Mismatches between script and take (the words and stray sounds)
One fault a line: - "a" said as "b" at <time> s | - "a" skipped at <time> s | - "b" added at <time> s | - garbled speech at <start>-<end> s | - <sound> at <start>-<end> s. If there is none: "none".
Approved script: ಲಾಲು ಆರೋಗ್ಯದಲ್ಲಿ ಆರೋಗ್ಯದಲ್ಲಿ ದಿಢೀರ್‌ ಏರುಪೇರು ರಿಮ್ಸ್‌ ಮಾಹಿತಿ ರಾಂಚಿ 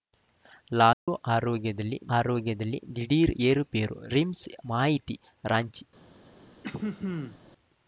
- dropout at 0.9-1.1 s
- throat clearing at 6.6-7.4 s